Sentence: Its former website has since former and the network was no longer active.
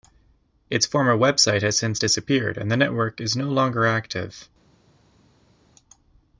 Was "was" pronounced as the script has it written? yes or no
no